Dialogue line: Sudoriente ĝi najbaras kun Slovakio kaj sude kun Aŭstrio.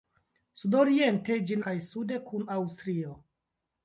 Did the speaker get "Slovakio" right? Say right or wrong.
wrong